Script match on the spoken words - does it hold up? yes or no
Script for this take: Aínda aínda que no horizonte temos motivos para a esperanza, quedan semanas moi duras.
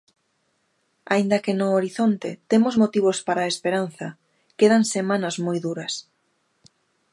no